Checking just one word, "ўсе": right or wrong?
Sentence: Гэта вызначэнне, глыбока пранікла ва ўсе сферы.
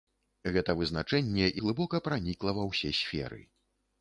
right